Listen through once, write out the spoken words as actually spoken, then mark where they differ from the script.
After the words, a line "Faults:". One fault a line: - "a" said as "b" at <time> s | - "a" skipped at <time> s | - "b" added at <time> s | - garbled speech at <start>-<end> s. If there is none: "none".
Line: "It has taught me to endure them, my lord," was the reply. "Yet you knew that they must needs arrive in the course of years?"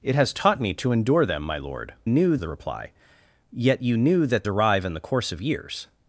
"It has taught me to endure them, my lord," knew the reply. "Yet you knew that arrive in the course of years?"
Faults:
- "was" said as "knew" at 2.1 s
- "they must needs" skipped at 4.4 s